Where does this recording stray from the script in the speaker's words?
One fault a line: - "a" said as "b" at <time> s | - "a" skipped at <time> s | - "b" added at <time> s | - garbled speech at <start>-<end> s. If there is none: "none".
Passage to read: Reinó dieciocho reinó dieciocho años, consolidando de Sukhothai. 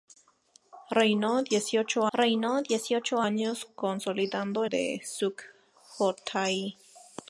none